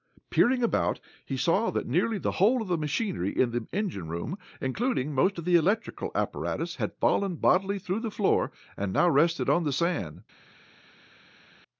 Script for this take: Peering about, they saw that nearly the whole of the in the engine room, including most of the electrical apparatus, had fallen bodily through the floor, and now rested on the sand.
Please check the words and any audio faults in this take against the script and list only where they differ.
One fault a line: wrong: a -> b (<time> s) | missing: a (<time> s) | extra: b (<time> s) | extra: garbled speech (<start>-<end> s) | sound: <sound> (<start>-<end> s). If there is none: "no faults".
wrong: they -> he (1.2 s)
extra: machinery (2.8 s)